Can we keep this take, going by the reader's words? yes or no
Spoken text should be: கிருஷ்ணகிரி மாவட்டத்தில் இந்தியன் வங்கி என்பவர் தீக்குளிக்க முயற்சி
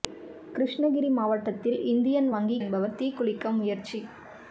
yes